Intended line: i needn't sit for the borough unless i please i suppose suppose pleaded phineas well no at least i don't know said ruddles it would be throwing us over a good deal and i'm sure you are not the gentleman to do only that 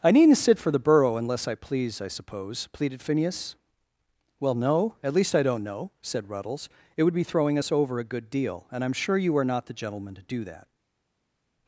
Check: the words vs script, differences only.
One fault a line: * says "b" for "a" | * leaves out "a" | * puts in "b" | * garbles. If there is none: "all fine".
* leaves out "suppose"
* leaves out "only"